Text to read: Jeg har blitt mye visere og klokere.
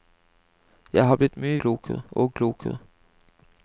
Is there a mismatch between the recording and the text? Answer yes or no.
yes